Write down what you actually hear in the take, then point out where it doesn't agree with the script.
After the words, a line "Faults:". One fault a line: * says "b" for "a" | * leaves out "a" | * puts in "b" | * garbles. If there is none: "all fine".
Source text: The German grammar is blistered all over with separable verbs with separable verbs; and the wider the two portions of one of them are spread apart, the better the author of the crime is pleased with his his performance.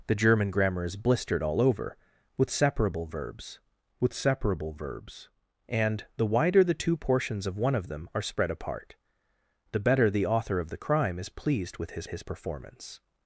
The German grammar is blistered all over with separable verbs with separable verbs; and the wider the two portions of one of them are spread apart, the better the author of the crime is pleased with his his performance.
Faults:
all fine